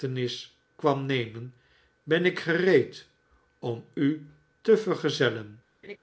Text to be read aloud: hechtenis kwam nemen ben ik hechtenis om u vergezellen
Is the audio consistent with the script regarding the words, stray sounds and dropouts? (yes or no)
no